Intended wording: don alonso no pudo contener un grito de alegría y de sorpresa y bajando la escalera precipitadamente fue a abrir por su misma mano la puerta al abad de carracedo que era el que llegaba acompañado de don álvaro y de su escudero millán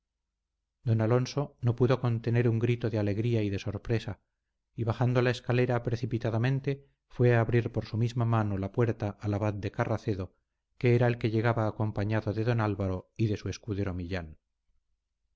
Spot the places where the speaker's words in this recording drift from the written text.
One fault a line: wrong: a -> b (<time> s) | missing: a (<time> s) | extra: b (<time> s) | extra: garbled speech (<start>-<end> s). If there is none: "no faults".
no faults